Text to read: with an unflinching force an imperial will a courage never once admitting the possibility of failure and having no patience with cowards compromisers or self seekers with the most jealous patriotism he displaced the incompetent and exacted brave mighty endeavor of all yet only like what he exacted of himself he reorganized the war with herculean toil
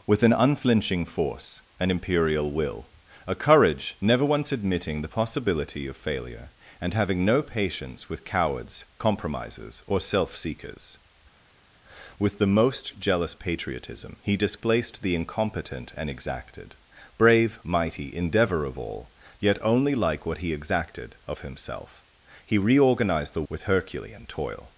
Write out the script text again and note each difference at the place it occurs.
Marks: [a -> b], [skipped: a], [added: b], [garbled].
with an unflinching force an imperial will a courage never once admitting the possibility of failure and having no patience with cowards compromisers or self seekers with the most jealous patriotism he displaced the incompetent and exacted brave mighty endeavor of all yet only like what he exacted of himself he reorganized the [skipped: war] with herculean toil